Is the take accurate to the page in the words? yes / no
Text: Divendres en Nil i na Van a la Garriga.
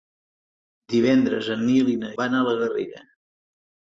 yes